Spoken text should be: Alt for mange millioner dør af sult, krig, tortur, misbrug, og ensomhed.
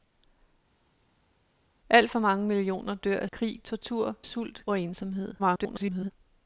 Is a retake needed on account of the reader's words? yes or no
yes